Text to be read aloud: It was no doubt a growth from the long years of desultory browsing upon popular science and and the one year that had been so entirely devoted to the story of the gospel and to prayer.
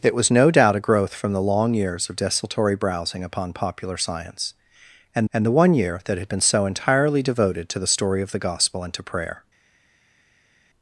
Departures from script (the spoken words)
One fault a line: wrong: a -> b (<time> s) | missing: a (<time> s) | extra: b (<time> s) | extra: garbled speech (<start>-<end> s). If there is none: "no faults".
no faults